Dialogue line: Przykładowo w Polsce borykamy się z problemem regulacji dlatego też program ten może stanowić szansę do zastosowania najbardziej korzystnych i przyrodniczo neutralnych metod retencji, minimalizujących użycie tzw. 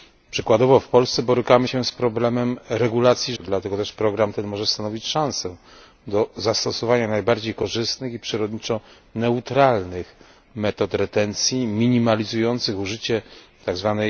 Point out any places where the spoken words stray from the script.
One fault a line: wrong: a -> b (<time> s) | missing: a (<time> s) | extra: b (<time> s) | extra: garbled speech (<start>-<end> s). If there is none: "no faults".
no faults